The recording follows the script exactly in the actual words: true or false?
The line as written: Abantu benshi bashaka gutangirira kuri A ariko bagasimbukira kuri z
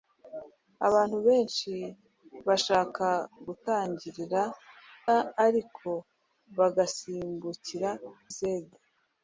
false